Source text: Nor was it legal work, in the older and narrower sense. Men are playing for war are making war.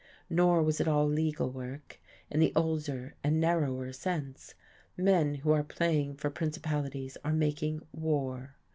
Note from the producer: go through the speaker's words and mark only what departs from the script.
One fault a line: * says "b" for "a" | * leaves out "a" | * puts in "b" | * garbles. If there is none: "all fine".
* puts in "all"
* puts in "who"
* says "principalities" for "war"